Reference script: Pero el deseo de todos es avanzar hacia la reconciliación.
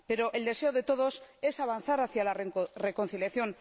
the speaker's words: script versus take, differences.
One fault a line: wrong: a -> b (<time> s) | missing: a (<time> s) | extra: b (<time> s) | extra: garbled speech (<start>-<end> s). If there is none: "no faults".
no faults